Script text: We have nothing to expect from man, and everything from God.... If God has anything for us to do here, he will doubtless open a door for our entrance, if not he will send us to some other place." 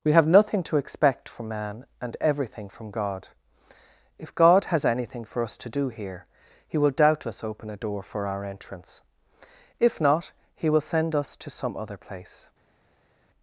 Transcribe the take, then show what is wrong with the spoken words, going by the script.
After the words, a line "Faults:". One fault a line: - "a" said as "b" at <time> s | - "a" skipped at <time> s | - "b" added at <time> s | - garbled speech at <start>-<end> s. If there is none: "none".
We have nothing to expect from man, and everything from God.... If God has anything for us to do here, he will doubtless open a door for our entrance, if not he will send us to some other place."
Faults:
none